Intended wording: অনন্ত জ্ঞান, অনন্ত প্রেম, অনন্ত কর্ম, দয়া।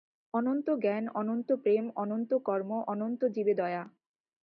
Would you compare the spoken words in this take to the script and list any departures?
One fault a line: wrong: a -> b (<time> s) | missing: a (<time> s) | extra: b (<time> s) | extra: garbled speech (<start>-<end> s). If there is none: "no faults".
extra: অনন্ত জীবে (2.9 s)